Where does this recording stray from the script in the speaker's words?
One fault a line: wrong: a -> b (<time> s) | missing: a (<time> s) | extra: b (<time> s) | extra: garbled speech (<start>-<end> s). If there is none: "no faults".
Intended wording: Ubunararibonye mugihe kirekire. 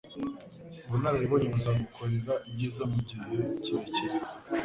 extra: buzagukorera ibyiza (1.5 s)